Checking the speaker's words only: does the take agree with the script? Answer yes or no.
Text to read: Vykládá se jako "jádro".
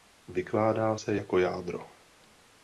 yes